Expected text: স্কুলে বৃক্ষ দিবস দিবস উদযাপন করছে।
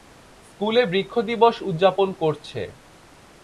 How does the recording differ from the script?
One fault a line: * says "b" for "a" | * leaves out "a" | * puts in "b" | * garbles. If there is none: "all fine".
* leaves out "দিবস"